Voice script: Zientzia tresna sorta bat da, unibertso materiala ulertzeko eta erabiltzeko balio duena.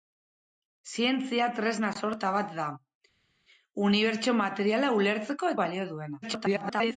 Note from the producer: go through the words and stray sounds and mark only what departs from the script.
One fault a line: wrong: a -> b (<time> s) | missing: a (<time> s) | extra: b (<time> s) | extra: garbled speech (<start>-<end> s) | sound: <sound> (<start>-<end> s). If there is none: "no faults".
missing: eta erabiltzeko (5.5 s)
extra: garbled speech (6.2-7.0 s)